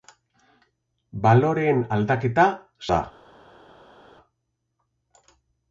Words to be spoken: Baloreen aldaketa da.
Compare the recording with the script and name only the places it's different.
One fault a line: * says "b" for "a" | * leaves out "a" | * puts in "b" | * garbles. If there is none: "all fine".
all fine